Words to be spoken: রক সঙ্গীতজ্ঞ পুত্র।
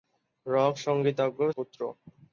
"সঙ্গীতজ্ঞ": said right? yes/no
yes